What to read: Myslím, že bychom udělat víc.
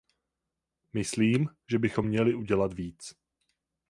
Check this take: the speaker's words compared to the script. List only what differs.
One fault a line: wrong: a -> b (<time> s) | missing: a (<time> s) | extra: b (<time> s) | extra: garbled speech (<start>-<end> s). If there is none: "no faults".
extra: měli (2.0 s)